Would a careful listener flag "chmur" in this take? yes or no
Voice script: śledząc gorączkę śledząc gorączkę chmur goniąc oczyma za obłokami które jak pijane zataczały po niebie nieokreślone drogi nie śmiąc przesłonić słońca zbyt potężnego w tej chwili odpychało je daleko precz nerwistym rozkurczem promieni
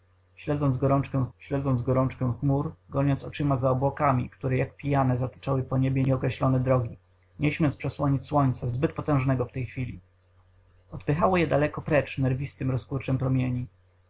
no